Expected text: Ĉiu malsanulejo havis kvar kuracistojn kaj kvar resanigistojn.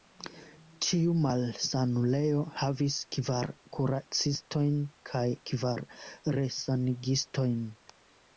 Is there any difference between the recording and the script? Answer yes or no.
no